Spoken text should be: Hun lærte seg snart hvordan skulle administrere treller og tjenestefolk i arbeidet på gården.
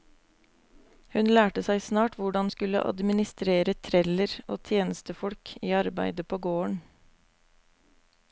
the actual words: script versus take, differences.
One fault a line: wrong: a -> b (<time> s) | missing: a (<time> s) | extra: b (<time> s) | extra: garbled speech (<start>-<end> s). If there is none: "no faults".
no faults